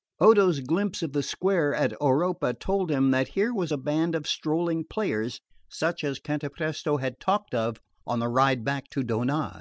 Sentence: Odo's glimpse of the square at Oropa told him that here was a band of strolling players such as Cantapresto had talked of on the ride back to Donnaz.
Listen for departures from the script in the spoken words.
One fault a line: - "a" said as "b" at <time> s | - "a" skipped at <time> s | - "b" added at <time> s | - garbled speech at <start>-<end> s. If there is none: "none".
none